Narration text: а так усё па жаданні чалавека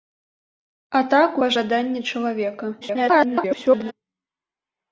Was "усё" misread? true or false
true